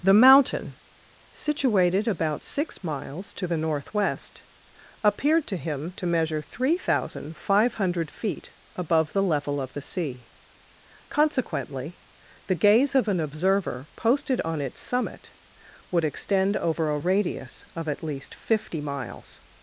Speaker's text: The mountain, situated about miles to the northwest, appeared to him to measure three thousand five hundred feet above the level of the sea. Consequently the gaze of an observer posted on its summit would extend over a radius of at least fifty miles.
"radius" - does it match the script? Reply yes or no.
yes